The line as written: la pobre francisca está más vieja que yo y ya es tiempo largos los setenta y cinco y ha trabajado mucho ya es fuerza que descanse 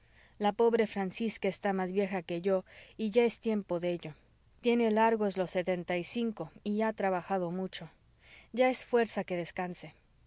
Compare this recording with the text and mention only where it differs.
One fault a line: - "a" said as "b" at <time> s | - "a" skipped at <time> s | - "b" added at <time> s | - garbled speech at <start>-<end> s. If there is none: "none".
- "de ello tiene" added at 3.8 s